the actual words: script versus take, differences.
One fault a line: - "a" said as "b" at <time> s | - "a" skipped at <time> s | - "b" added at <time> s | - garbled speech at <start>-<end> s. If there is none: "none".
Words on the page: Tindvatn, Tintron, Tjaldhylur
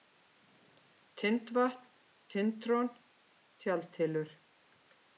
none